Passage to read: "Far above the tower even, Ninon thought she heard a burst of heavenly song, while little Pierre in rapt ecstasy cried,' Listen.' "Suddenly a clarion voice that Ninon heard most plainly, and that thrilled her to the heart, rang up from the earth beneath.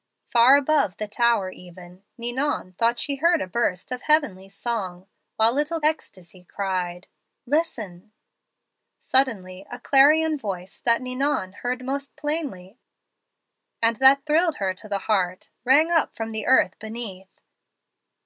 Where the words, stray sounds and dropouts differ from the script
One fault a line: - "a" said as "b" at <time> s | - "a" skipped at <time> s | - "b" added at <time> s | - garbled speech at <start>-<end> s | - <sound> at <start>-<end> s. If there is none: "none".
- "Pierre in rapt" skipped at 5.8 s